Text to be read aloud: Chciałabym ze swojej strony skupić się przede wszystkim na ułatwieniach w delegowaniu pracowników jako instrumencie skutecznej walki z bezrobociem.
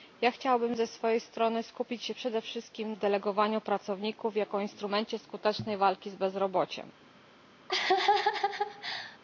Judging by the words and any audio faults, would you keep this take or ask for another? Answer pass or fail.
fail